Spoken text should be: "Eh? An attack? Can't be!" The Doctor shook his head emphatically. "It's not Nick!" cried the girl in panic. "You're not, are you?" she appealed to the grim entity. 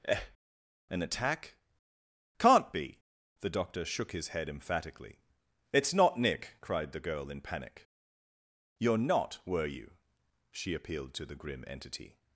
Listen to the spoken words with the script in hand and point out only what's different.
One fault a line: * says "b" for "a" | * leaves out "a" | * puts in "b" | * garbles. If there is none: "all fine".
* says "were" for "are"